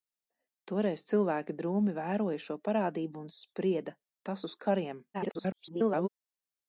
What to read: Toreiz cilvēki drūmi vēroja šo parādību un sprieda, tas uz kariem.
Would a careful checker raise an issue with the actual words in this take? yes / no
yes